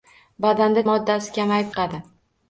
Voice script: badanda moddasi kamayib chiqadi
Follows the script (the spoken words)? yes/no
yes